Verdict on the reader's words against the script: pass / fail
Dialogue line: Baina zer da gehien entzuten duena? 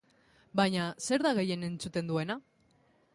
pass